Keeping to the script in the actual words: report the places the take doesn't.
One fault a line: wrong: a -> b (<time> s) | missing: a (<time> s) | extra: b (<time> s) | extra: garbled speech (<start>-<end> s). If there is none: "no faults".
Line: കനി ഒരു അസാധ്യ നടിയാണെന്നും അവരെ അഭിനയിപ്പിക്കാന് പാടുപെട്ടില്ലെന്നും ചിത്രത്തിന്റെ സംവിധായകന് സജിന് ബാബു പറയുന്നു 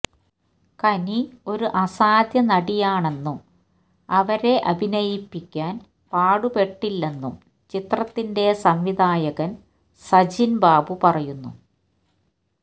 no faults